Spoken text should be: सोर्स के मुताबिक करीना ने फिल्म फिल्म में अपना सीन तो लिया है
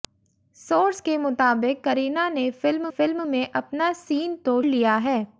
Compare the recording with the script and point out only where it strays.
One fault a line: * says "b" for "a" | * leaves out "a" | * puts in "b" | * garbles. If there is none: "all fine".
all fine